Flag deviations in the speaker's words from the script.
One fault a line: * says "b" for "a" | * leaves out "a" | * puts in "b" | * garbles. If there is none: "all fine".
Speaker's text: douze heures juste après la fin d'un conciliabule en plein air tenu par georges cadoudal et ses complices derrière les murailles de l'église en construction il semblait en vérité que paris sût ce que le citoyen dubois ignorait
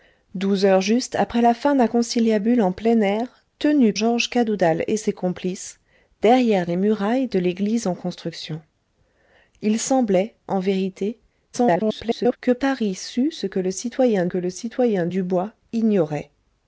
* leaves out "par"
* garbles
* puts in "que le citoyen"